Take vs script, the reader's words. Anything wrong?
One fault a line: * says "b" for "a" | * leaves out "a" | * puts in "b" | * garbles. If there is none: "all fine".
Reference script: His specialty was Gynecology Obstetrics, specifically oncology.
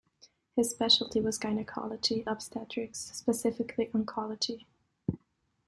all fine